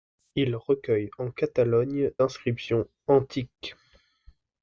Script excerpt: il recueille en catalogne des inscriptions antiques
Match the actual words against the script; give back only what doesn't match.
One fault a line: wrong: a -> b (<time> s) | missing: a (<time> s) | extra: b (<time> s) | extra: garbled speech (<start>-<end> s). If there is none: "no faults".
missing: des (2.1 s)